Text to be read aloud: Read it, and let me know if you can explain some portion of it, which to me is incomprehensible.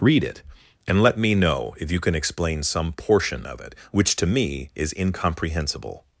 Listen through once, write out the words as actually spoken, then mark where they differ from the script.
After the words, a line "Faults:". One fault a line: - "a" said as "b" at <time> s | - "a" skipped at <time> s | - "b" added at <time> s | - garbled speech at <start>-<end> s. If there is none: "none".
Read it, and let me know if you can explain some portion of it, which to me is incomprehensible.
Faults:
none